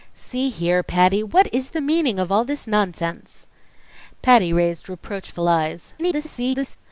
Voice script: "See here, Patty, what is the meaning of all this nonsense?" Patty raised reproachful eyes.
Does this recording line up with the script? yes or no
no